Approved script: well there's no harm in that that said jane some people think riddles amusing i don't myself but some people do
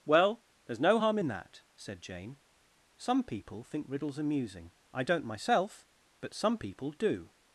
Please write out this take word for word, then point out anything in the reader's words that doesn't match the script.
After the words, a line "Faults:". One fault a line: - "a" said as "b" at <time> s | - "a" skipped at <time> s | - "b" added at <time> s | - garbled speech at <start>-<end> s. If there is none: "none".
well there's no harm in that said jane some people think riddles amusing i don't myself but some people do
Faults:
- "that" skipped at 1.6 s